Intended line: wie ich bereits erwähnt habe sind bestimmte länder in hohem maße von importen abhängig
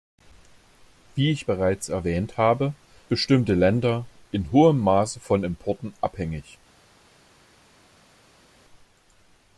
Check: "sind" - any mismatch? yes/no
yes